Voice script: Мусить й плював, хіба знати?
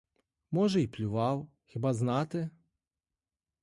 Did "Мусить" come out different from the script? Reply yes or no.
yes